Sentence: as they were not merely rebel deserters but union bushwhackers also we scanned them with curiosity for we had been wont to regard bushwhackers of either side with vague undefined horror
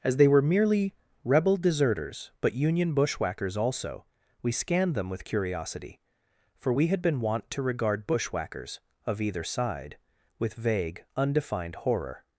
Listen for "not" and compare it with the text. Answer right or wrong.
wrong